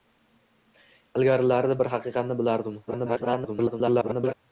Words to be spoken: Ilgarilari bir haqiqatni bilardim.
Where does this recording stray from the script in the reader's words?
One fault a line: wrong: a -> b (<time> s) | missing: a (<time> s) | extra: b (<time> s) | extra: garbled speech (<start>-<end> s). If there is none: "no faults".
extra: garbled speech (2.9-4.3 s)